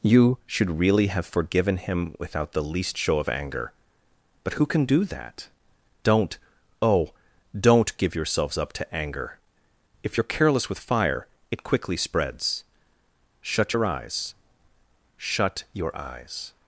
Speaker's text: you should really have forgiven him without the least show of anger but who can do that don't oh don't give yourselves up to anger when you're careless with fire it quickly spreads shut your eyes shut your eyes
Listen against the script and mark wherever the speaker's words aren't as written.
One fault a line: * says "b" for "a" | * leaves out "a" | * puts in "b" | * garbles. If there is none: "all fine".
* says "if" for "when"